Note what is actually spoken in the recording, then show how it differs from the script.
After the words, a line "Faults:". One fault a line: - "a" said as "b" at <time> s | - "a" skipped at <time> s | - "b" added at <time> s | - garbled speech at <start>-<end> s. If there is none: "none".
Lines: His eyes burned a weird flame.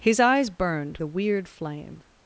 His eyes burned a weird flame.
Faults:
none